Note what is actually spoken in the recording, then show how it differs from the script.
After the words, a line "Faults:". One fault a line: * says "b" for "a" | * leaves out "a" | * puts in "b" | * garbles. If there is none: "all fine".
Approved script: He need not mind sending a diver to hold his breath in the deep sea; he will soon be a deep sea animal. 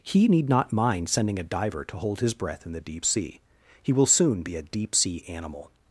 He need not mind sending a diver to hold his breath in the deep sea; he will soon be a deep sea animal.
Faults:
all fine